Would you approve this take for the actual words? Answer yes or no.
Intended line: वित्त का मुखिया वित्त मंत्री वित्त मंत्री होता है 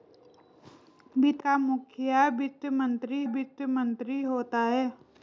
yes